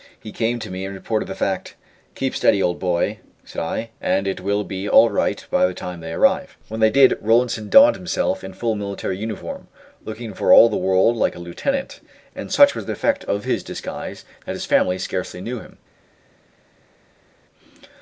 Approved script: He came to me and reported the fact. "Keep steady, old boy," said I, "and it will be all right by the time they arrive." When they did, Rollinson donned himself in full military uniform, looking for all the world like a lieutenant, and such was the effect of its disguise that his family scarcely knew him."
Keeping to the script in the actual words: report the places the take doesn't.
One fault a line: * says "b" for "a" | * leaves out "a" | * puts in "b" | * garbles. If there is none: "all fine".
* says "his" for "its"